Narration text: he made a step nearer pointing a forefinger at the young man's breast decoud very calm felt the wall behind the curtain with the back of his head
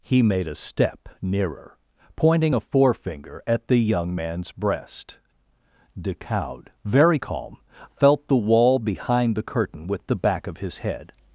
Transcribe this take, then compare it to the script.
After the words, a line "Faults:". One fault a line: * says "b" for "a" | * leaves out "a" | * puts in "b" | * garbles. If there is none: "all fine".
he made a step nearer pointing a forefinger at the young man's breast decoud very calm felt the wall behind the curtain with the back of his head
Faults:
all fine